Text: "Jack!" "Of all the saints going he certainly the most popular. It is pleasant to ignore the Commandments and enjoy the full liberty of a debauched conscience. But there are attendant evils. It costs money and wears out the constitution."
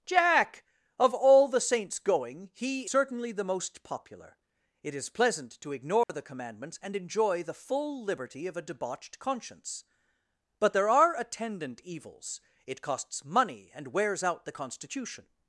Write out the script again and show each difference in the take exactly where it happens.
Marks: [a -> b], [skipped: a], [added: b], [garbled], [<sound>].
"Jack!" "Of all the saints going he certainly the most popular. It is pleasant to ignore [dropout] the Commandments and enjoy the full liberty of a debauched conscience. But there are attendant evils. It costs money and wears out the constitution."